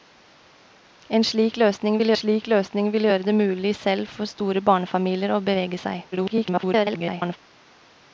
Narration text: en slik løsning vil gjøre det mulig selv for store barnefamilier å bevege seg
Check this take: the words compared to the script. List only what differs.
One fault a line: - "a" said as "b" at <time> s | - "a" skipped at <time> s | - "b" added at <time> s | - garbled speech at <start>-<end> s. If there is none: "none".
- "slik løsning vil" added at 2.1 s
- garbled speech at 6.1-7.4 s